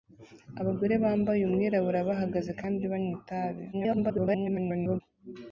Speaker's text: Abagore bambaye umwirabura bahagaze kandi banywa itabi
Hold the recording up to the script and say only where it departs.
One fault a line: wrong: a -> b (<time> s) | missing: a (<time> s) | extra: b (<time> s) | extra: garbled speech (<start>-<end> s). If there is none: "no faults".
extra: garbled speech (3.7-5.0 s)